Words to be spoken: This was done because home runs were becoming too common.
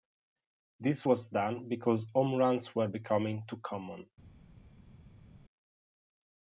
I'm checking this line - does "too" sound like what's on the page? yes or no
yes